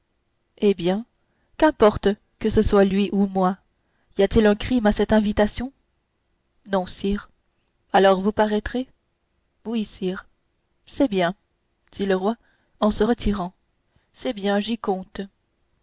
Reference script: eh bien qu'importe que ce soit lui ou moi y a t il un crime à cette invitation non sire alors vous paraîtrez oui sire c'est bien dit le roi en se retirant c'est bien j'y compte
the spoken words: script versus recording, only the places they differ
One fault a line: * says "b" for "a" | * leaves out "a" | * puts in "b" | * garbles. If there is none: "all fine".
all fine